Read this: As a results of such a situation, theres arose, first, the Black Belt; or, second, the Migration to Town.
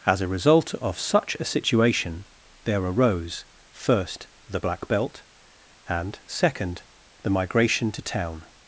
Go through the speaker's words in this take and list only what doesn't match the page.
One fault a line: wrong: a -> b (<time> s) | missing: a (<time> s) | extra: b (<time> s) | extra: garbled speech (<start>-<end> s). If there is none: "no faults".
wrong: results -> result (0.3 s)
wrong: theres -> there (2.6 s)
wrong: or -> and (5.9 s)